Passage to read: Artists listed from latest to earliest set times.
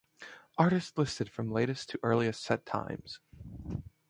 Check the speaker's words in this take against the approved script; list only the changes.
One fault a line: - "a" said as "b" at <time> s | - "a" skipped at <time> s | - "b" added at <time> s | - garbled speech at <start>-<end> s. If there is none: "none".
none